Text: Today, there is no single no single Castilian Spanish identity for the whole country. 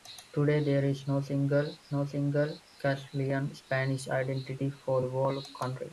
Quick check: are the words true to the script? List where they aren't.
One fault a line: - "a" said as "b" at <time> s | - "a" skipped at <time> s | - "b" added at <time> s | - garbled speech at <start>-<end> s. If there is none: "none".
none